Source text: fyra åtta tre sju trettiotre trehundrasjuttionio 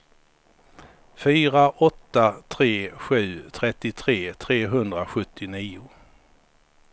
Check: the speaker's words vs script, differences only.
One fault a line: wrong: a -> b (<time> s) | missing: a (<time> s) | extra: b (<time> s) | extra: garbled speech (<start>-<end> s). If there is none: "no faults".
no faults